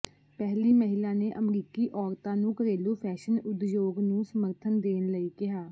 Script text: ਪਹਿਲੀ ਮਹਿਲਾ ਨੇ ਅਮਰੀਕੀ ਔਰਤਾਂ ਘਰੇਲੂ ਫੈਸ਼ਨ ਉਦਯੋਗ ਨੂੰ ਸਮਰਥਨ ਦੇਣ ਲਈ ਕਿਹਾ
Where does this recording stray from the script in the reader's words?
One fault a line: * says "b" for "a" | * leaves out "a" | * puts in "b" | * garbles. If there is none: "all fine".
* puts in "ਨੂੰ"